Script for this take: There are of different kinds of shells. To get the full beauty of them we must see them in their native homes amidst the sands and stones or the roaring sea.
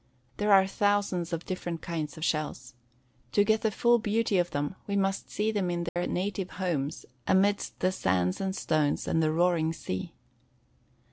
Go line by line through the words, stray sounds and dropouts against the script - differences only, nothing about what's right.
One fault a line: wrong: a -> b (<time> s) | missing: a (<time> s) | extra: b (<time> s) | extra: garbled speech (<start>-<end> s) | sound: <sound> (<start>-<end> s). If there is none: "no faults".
extra: thousands (0.7 s)
sound: dropout (5.9-6.0 s)
wrong: or -> and (9.1 s)